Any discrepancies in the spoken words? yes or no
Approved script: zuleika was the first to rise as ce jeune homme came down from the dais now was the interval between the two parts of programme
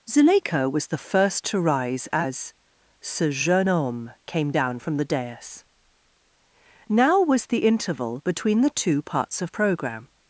no